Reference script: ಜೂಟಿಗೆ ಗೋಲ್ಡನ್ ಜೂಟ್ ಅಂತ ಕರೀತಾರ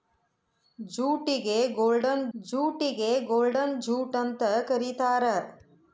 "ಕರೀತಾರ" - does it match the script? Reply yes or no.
yes